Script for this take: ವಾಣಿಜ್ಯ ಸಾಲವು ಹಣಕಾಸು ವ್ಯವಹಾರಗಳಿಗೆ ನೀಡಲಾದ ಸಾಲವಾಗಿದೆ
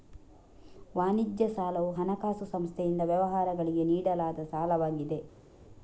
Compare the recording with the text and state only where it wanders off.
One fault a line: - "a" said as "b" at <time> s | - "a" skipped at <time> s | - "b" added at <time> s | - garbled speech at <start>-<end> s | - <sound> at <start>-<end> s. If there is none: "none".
- "ಸಂಸ್ಥೆಯಿಂದ" added at 2.5 s